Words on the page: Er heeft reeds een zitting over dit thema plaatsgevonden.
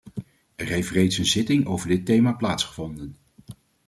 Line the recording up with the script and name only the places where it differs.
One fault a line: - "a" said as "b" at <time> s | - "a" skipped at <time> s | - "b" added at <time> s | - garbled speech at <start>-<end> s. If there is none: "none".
none